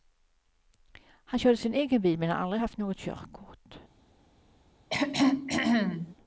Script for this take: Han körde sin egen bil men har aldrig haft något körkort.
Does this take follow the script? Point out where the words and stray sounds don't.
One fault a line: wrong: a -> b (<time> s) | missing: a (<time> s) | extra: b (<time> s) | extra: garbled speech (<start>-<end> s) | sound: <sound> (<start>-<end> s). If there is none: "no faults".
sound: throat clearing (4.9-6.2 s)